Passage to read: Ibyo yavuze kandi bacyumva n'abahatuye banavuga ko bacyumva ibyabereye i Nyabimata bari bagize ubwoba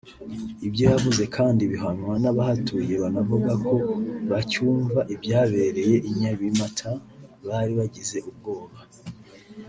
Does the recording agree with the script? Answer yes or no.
no